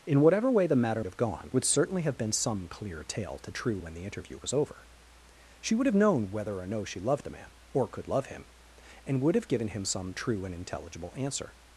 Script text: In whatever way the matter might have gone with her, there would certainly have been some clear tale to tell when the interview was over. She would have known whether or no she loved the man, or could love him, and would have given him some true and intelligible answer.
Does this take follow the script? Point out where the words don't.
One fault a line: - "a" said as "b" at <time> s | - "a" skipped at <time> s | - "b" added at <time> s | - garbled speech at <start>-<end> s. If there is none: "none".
- "might" skipped at 1.0 s
- "with her there" skipped at 1.5 s
- "tell" said as "true" at 3.5 s